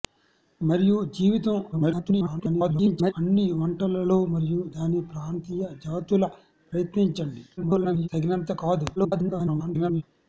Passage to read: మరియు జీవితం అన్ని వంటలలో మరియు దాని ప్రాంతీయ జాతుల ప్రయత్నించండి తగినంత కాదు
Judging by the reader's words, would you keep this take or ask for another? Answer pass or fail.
fail